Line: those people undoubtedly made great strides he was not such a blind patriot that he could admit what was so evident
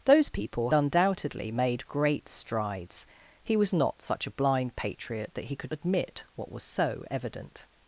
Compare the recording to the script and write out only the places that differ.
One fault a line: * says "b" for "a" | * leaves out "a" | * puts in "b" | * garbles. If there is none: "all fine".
all fine